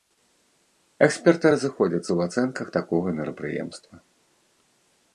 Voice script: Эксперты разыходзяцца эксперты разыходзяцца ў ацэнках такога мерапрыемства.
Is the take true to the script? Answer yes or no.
no